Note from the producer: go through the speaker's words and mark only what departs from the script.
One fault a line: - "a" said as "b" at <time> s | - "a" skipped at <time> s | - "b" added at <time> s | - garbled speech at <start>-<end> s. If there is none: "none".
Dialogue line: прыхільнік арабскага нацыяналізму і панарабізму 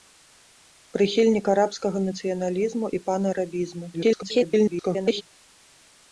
- garbled speech at 3.9-5.2 s